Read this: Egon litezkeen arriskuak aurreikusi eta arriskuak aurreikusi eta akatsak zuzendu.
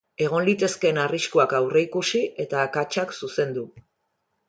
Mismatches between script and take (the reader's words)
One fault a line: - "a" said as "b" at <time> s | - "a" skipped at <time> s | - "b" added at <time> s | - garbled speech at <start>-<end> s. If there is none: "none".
- "arriskuak aurreikusi eta" skipped at 2.6 s